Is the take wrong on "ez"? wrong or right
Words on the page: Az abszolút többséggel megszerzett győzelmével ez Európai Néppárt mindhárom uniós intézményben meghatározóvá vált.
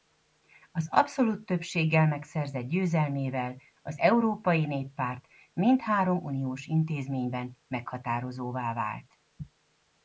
wrong